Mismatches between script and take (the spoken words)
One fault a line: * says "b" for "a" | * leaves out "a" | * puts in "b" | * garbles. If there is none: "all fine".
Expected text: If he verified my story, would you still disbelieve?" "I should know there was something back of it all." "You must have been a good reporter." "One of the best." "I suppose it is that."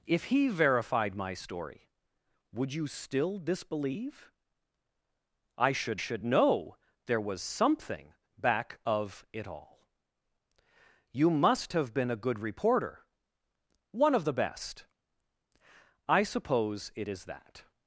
* puts in "should"